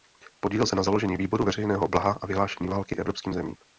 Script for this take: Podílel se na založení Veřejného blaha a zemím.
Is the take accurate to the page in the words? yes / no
no